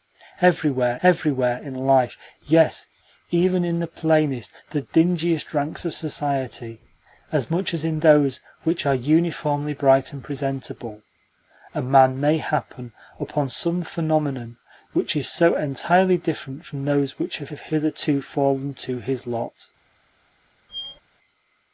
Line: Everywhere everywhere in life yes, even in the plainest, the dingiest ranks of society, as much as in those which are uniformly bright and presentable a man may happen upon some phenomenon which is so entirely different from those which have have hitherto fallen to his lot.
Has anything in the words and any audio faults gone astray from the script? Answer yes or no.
yes